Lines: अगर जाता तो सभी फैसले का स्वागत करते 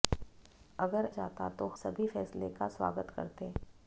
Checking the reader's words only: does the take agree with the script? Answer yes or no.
yes